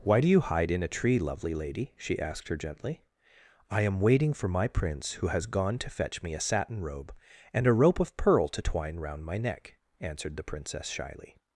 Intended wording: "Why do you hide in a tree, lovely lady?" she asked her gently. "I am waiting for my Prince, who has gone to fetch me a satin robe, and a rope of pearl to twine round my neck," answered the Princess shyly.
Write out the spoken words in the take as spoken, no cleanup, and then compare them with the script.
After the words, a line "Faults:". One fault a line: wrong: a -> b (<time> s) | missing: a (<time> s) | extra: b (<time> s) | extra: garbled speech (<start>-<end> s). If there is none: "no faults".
"Why do you hide in a tree, lovely lady?" she asked her gently. "I am waiting for my Prince, who has gone to fetch me a satin robe, and a rope of pearl to twine round my neck," answered the Princess shyly.
Faults:
no faults